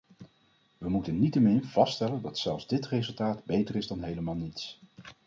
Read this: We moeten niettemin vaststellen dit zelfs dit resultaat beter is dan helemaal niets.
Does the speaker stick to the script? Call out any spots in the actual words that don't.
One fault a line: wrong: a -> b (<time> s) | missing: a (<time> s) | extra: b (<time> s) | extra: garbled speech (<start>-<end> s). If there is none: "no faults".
wrong: dit -> dat (2.2 s)